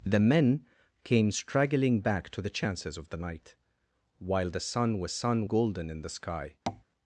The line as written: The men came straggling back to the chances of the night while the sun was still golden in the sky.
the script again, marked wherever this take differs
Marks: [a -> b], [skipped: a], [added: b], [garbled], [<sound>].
The men came straggling back to the chances of the night while the sun was [still -> sun] golden in the sky. [tap]